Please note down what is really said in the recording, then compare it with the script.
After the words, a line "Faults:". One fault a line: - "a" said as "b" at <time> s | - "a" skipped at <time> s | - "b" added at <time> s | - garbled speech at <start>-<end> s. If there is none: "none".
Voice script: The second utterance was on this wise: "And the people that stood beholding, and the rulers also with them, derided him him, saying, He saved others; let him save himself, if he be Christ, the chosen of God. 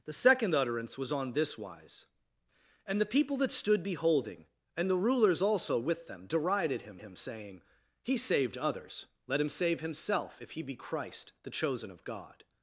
The second utterance was on this wise: "And the people that stood beholding, and the rulers also with them, derided him him, saying, He saved others; let him save himself, if he be Christ, the chosen of God.
Faults:
none